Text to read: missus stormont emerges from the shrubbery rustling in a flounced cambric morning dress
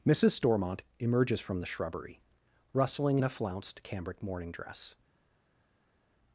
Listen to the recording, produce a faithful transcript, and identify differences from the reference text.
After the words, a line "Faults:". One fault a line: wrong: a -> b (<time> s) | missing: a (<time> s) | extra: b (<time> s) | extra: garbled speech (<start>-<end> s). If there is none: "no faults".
missus stormont emerges from the shrubbery rustling in a flounced cambric morning dress
Faults:
no faults